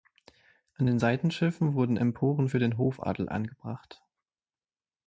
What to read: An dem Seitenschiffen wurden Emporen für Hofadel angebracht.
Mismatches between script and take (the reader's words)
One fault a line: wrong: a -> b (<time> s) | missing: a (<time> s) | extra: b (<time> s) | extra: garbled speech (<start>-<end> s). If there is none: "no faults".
wrong: dem -> den (0.9 s)
extra: den (2.6 s)